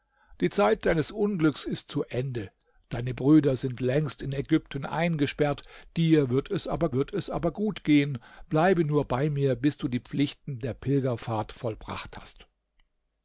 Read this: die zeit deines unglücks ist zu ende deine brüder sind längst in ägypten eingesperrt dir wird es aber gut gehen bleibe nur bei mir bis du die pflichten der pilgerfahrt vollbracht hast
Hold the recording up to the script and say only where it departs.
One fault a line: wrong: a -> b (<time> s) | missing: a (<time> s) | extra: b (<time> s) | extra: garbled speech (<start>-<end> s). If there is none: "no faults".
extra: wird es aber (6.9 s)